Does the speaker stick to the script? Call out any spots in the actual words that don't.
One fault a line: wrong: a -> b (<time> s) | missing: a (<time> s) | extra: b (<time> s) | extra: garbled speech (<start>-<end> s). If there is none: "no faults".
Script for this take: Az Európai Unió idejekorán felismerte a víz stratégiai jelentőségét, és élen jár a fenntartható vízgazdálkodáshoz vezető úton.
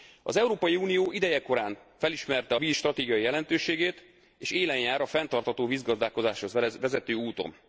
no faults